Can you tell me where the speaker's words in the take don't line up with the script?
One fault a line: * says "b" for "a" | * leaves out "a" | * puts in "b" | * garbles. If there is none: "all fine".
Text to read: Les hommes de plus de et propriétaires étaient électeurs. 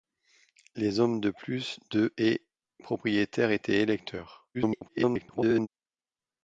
* garbles